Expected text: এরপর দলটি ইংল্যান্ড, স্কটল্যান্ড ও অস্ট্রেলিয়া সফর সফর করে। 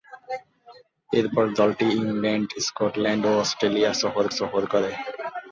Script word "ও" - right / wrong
right